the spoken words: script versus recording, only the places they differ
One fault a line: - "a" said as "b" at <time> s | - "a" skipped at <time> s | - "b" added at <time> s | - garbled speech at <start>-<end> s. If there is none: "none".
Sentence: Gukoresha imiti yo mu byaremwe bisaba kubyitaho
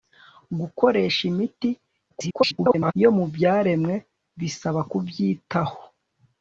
- garbled speech at 2.1-2.9 s